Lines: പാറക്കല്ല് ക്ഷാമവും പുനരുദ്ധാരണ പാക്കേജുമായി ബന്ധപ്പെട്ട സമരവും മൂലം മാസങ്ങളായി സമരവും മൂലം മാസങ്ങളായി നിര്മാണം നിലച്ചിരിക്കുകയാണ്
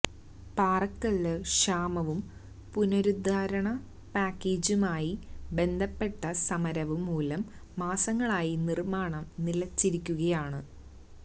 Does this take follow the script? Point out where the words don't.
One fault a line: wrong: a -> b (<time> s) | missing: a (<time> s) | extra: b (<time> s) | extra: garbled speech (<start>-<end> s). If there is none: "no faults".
missing: സമരവും മൂലം മാസങ്ങളായി (8.6 s)